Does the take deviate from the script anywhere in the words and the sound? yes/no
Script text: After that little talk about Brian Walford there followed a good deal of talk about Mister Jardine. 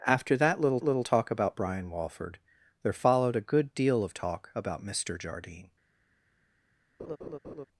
yes